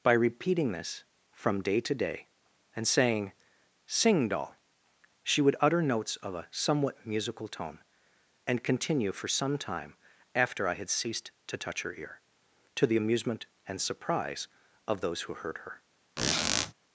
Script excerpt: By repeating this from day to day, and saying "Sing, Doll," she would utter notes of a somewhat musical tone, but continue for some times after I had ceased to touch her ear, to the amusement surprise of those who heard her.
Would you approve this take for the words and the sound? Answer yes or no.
no